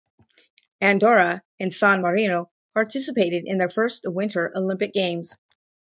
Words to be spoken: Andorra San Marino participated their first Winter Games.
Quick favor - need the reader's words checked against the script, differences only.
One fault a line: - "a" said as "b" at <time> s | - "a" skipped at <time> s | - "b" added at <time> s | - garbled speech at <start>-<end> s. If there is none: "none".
- "and" added at 1.6 s
- "in" added at 3.4 s
- "Olympic" added at 4.5 s